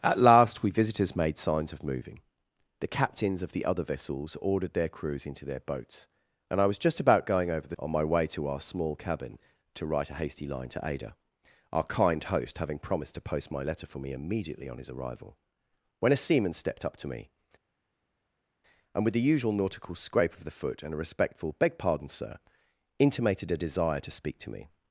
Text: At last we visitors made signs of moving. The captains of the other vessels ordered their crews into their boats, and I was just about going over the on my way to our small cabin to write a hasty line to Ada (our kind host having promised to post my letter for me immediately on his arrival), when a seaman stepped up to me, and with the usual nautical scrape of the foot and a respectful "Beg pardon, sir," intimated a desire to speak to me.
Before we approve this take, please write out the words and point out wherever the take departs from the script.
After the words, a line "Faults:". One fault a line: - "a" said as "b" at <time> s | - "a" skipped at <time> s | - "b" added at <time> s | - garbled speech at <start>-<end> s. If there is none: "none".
At last we visitors made signs of moving. The captains of the other vessels ordered their crews into their boats, and I was just about going over the on my way to our small cabin to write a hasty line to Ada (our kind host having promised to post my letter for me immediately on his arrival), when a seaman stepped up to me, and with the usual nautical scrape of the foot and a respectful "Beg pardon, sir," intimated a desire to speak to me.
Faults:
none